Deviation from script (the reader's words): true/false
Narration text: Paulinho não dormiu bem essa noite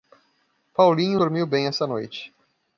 true